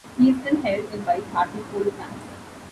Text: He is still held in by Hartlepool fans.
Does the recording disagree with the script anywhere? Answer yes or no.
no